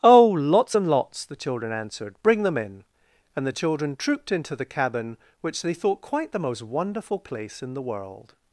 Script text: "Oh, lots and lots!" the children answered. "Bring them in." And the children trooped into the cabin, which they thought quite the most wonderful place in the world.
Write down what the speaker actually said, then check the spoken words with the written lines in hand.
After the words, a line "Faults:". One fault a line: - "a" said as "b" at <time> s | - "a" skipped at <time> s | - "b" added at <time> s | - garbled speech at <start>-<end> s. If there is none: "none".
"Oh, lots and lots!" the children answered. "Bring them in." And the children trooped into the cabin, which they thought quite the most wonderful place in the world.
Faults:
none